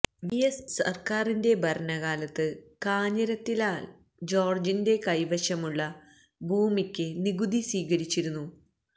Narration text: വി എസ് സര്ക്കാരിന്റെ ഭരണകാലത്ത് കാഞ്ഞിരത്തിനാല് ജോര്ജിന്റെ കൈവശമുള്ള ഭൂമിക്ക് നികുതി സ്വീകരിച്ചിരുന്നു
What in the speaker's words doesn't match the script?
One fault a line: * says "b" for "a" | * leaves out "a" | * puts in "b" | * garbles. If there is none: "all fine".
all fine